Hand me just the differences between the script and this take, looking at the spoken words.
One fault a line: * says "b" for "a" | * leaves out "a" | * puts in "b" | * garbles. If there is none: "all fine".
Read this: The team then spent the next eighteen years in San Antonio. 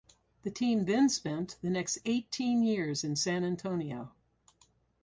all fine